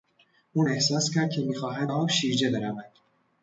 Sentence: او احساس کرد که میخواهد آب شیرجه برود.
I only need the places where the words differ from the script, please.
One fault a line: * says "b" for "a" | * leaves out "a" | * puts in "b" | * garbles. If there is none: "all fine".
all fine